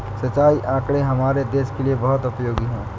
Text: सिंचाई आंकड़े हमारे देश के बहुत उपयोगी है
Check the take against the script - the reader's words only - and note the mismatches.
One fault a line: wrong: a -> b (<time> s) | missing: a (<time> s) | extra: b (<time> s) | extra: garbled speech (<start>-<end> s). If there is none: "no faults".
extra: लिए (1.8 s)